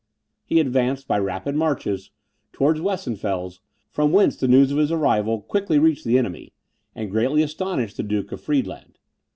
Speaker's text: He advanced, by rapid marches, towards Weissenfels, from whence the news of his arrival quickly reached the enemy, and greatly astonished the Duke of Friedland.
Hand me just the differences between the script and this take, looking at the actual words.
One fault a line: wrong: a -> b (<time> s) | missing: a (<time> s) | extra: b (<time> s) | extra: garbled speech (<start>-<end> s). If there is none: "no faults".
no faults